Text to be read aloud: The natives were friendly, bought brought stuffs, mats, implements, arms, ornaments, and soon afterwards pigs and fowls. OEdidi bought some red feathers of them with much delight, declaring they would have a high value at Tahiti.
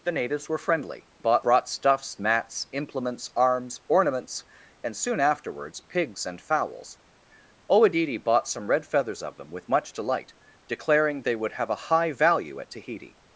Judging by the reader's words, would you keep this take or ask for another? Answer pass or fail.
pass